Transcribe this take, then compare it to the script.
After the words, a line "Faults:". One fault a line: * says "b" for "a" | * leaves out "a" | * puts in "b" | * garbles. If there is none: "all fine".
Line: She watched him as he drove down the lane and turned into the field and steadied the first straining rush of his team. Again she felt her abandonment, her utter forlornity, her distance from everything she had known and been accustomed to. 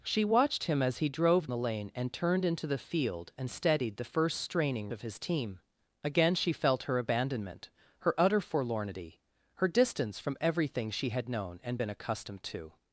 She watched him as he drove the lane and turned into the field and steadied the first straining of his team. Again she felt her abandonment, her utter forlornity, her distance from everything she had known and been accustomed to.
Faults:
* leaves out "down"
* leaves out "rush"